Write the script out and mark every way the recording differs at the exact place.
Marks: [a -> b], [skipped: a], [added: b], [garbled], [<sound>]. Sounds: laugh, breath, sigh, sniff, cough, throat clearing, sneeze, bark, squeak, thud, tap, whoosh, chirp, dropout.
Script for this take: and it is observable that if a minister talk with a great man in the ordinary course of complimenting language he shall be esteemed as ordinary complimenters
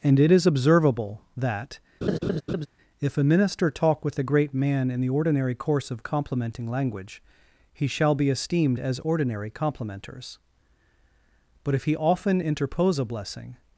and it is observable that [laugh] if a minister talk with a great man in the ordinary course of complimenting language he shall be esteemed as ordinary complimenters [added: but if he often interpose a blessing]